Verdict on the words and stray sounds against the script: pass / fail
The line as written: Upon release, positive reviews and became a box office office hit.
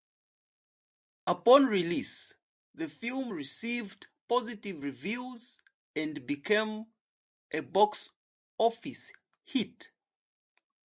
fail